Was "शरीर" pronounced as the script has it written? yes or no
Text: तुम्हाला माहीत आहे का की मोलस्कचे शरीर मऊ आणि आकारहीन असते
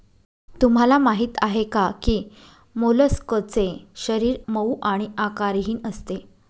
yes